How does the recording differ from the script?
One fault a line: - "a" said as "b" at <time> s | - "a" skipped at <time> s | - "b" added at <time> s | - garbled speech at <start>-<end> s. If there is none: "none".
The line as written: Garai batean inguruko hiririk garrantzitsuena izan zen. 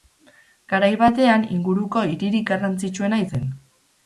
- "izan" skipped at 3.2 s